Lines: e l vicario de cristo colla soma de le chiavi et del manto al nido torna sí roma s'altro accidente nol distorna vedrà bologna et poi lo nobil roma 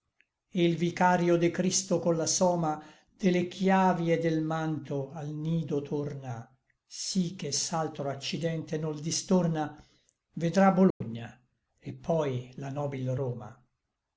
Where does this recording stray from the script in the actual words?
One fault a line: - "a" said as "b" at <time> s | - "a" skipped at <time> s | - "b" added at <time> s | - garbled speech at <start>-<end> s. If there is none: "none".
- "roma" said as "che" at 7.3 s
- "lo" said as "la" at 12.6 s